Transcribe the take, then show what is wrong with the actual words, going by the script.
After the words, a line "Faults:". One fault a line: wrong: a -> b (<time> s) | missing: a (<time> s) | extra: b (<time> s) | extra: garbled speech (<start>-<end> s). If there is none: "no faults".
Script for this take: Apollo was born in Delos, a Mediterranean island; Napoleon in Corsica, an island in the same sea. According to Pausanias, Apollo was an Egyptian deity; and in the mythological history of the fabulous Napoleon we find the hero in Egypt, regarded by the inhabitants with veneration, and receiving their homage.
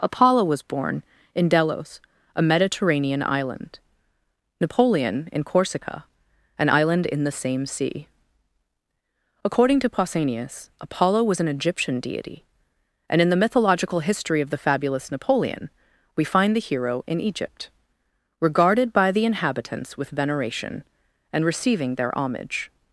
Apollo was born in Delos, a Mediterranean island; Napoleon in Corsica, an island in the same sea. According to Pausanias, Apollo was an Egyptian deity; and in the mythological history of the fabulous Napoleon we find the hero in Egypt, regarded by the inhabitants with veneration, and receiving their homage.
Faults:
no faults